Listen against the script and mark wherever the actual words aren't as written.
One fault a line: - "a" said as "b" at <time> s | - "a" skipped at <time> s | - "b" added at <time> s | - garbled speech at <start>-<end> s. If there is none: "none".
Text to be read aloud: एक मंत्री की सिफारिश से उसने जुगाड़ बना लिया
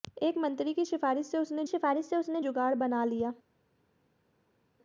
- "सिफारिश से उसने" added at 1.7 s